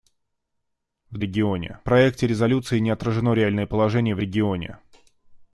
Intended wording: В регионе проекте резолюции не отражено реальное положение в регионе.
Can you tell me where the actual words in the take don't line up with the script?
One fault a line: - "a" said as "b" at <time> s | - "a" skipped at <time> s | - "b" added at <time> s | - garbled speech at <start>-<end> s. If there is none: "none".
none